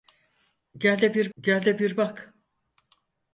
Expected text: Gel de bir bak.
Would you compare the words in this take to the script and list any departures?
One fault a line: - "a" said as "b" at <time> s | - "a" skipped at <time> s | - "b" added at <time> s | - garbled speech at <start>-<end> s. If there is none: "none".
- "gel de bir" added at 1.4 s